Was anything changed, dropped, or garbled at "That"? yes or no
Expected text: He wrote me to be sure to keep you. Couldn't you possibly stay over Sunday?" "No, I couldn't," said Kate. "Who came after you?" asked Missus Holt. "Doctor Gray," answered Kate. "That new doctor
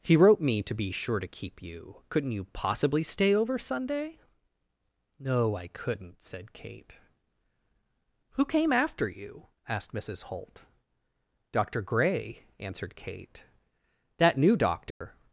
no